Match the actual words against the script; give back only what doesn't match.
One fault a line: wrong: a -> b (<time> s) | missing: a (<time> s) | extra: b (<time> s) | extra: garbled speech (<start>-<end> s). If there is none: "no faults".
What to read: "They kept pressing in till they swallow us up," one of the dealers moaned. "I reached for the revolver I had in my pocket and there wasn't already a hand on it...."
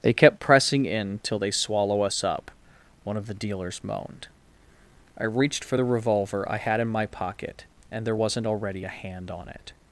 no faults